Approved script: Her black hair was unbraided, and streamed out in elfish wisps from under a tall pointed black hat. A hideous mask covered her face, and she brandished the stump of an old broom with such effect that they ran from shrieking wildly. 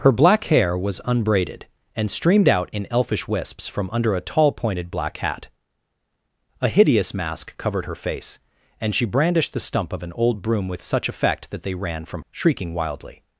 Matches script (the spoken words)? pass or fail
pass